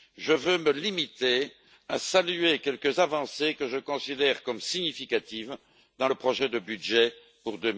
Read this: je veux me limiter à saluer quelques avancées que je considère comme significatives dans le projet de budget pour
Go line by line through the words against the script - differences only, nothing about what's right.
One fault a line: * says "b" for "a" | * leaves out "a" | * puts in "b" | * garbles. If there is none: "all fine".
all fine